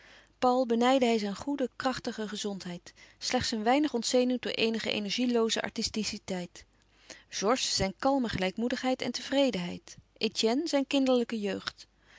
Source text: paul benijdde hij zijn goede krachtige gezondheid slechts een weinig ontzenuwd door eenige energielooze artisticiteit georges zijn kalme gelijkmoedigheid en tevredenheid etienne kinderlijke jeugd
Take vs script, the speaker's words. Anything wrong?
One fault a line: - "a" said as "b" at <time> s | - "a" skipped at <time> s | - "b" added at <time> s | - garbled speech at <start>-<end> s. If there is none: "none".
- "zijn" added at 10.7 s